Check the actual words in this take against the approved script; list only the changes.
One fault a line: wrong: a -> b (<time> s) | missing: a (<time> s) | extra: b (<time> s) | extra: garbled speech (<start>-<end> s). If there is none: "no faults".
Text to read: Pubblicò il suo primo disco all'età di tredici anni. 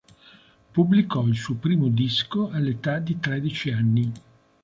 no faults